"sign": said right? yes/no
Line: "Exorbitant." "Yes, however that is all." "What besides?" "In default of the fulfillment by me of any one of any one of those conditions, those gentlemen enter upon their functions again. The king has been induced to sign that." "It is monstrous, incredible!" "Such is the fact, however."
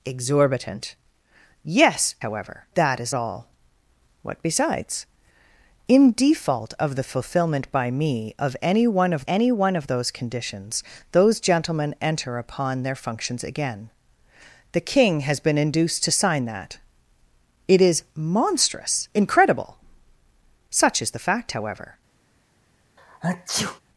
yes